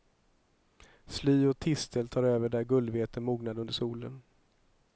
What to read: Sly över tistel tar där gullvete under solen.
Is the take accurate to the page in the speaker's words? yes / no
no